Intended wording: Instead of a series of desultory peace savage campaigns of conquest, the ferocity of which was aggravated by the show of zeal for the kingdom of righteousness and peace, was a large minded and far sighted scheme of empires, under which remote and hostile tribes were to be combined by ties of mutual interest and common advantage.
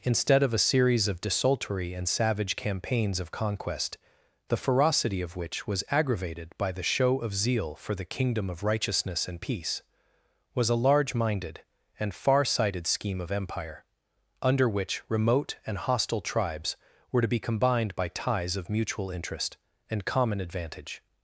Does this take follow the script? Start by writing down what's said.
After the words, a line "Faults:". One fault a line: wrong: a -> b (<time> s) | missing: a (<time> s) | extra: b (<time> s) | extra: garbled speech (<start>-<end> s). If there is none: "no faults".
Instead of a series of desultory and savage campaigns of conquest, the ferocity of which was aggravated by the show of zeal for the kingdom of righteousness and peace, was a large minded and far sighted scheme of empire, under which remote and hostile tribes were to be combined by ties of mutual interest and common advantage.
Faults:
wrong: peace -> and (1.9 s)
wrong: empires -> empire (13.3 s)